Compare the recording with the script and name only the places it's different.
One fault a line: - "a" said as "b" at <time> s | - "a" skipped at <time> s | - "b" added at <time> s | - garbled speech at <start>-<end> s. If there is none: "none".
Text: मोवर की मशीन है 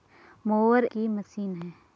none